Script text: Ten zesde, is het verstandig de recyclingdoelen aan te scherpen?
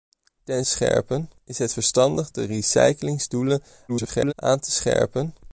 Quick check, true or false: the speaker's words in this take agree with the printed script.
false